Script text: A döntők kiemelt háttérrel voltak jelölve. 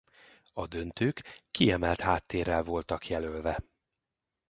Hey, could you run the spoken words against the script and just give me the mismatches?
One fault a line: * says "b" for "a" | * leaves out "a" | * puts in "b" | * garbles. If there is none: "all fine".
all fine